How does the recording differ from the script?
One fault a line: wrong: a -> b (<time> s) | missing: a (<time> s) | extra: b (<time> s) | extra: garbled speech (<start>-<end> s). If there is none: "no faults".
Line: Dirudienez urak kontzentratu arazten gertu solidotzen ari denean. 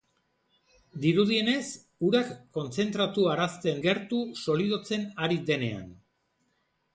no faults